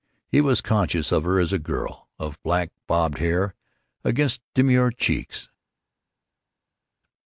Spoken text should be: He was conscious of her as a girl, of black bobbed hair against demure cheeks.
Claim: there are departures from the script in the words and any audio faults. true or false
false